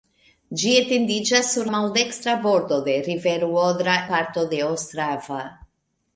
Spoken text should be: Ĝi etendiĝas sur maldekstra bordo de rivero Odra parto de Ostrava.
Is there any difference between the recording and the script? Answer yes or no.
no